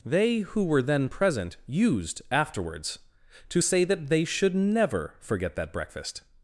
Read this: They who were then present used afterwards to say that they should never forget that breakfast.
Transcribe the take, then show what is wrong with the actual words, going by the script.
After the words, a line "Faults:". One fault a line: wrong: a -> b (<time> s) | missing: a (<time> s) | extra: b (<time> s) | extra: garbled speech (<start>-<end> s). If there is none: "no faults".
They who were then present used afterwards to say that they should never forget that breakfast.
Faults:
no faults